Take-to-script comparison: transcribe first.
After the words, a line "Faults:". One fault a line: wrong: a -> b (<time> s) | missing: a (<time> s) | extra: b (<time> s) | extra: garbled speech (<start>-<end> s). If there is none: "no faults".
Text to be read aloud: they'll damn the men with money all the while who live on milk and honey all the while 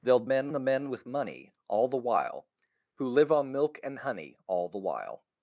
they'll men the men with money all the while who live on milk and honey all the while
Faults:
wrong: damn -> men (0.2 s)